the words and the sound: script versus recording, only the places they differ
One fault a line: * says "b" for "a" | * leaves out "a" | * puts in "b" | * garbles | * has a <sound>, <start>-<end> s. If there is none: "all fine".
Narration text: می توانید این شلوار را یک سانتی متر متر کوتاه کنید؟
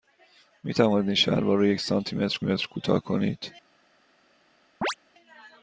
* has a chirp, 4.8-5.0 s